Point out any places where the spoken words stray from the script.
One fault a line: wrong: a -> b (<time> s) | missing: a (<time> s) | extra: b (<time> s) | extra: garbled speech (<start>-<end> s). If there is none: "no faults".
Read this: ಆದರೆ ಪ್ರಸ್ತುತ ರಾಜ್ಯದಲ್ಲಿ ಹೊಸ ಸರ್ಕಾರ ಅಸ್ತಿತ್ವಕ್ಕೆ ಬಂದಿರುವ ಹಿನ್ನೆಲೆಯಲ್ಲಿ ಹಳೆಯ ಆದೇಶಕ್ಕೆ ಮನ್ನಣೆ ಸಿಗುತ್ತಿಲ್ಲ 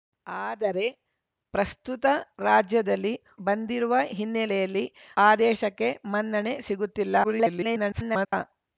missing: ಹೊಸ ಸರ್ಕಾರ ಅಸ್ತಿತ್ವಕ್ಕೆ (3.1 s)
missing: ಹಳೆಯ (4.8 s)
extra: garbled speech (7.2-8.3 s)